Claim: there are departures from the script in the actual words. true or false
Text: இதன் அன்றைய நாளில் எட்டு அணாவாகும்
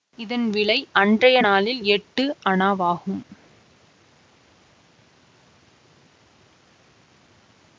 true